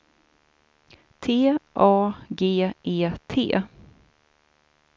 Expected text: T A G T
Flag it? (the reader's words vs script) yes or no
yes